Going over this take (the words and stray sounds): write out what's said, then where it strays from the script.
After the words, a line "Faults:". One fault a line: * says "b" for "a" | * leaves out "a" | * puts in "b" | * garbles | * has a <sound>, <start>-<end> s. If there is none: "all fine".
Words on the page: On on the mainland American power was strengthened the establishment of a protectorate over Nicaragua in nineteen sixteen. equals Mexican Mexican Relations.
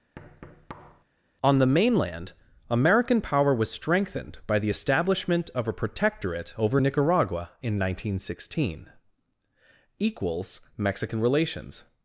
On the mainland American power was strengthened by the establishment of a protectorate over Nicaragua in nineteen sixteen. equals Mexican Relations.
Faults:
* has a thud, 0.2-1.0 s
* leaves out "on"
* puts in "by"
* leaves out "Mexican"